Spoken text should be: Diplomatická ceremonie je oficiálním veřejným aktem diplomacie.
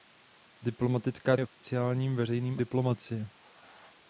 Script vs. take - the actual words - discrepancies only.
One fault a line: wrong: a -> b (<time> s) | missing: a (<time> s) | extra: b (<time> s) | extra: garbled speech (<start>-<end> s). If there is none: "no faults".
missing: ceremonie (1.4 s)
missing: aktem (2.6 s)